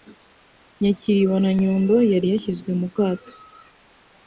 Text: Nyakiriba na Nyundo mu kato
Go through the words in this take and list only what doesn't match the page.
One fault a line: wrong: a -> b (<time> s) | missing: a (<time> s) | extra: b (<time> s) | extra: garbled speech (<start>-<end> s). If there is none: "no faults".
extra: yari yashyizwe (2.1 s)